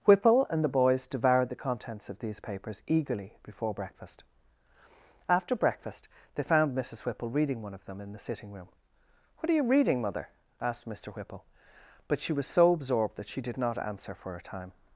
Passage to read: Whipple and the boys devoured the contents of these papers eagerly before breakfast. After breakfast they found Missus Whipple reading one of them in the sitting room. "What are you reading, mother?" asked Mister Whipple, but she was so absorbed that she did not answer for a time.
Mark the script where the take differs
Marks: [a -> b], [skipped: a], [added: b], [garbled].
Whipple and the boys devoured the contents of these papers eagerly before breakfast. After breakfast they found Missus Whipple reading one of them in the sitting room. "What are you reading, mother?" asked Mister Whipple, but she was so absorbed that she did not answer for a time.